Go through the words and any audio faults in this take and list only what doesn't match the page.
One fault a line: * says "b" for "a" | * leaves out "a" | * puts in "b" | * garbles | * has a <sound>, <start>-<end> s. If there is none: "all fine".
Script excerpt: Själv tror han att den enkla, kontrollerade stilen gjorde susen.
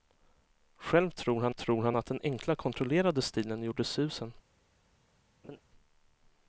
* puts in "tror han"
* has a laugh, 5.4-5.6 s